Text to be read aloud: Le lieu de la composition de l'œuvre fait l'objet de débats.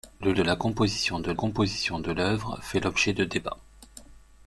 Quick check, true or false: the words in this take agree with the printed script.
false